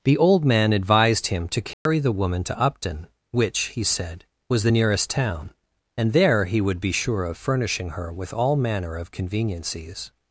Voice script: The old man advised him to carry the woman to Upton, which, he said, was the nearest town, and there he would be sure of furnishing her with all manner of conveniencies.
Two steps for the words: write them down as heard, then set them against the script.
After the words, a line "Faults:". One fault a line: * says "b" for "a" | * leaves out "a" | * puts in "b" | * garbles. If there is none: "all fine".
The old man advised him to carry the woman to Upton, which, he said, was the nearest town, and there he would be sure of furnishing her with all manner of conveniencies.
Faults:
all fine